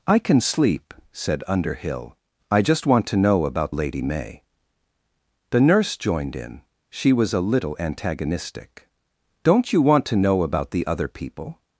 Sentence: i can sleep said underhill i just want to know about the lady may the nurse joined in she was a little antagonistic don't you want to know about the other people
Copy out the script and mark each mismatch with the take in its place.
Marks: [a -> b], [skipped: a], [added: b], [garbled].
i can sleep said underhill i just want to know about [skipped: the] lady may the nurse joined in she was a little antagonistic don't you want to know about the other people